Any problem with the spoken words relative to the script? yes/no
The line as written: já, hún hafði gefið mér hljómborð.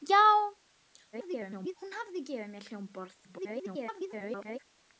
yes